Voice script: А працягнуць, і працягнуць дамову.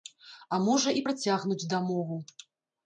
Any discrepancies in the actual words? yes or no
yes